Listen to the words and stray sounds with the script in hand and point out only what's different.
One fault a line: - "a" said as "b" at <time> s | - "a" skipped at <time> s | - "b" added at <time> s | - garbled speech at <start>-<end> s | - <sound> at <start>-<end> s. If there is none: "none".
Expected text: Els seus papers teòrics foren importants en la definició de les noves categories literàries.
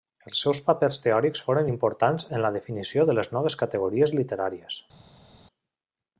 none